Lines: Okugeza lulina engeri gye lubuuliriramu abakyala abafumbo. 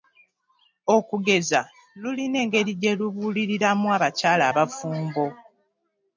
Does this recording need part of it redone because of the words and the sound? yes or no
no